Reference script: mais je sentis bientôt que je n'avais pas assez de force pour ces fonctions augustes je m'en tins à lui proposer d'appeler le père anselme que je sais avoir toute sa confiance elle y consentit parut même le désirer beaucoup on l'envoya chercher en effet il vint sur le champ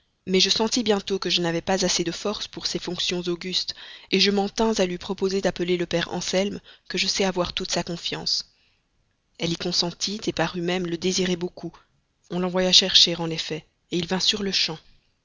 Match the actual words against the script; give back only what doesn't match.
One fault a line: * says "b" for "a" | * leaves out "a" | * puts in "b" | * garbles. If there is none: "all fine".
all fine